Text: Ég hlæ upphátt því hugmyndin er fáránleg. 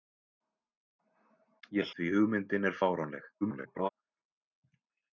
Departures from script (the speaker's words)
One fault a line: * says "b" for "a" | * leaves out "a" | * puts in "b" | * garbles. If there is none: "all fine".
* leaves out "hlæ upphátt"
* garbles